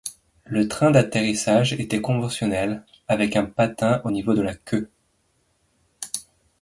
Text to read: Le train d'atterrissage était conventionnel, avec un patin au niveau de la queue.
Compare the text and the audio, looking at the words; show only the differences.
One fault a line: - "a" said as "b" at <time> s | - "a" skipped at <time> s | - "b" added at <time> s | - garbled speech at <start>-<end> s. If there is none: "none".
none